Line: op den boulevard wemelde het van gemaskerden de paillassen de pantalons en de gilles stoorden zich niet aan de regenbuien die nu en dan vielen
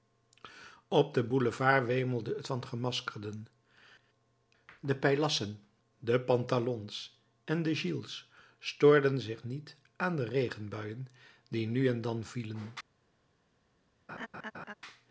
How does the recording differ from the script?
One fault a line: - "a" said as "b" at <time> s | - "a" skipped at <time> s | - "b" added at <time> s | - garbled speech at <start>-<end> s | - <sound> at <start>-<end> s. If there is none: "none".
- laugh at 14.1-14.7 s